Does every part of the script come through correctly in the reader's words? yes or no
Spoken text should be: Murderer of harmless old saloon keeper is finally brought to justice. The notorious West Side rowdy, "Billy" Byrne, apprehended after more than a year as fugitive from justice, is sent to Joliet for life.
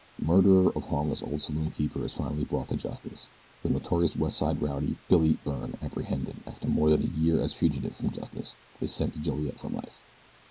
yes